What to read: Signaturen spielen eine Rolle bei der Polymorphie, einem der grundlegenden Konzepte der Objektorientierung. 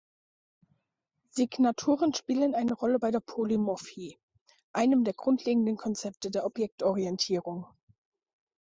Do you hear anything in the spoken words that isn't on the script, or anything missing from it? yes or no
no